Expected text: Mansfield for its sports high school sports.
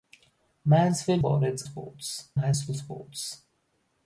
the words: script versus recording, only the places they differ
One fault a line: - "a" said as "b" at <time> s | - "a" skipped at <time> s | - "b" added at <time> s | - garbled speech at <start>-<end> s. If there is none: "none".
none